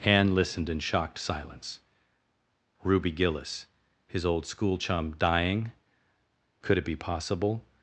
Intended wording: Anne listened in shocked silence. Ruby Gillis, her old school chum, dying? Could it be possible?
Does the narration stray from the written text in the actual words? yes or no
yes